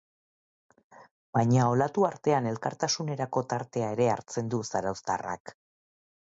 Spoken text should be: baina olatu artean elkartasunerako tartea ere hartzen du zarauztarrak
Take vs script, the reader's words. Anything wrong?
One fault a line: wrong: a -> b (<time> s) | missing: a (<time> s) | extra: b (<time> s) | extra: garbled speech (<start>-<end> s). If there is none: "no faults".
no faults